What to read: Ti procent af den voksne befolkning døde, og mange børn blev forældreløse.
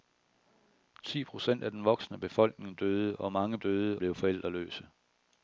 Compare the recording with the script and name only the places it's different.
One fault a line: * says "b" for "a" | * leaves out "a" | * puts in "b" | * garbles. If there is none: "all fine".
* says "døde" for "børn"